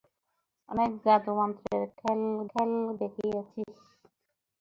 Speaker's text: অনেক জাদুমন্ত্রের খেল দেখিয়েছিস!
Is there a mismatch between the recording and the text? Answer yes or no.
yes